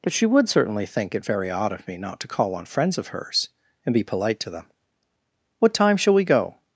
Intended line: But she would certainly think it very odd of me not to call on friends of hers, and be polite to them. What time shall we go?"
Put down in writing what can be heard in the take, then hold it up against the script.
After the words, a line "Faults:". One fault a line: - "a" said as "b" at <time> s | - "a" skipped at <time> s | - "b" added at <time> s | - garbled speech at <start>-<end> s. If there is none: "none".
But she would certainly think it very odd of me not to call on friends of hers, and be polite to them. What time shall we go?"
Faults:
none